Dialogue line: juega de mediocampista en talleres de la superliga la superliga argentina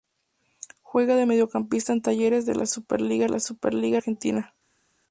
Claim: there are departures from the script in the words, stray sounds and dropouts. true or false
false